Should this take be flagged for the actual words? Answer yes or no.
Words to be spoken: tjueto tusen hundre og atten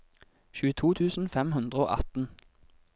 yes